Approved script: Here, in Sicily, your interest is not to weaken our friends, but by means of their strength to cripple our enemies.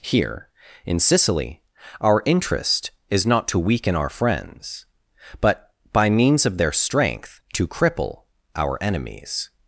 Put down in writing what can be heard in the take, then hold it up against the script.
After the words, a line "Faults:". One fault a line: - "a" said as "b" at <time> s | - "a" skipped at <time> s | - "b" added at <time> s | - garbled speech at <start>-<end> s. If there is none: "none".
Here, in Sicily, our interest is not to weaken our friends, but by means of their strength to cripple our enemies.
Faults:
- "your" said as "our" at 2.0 s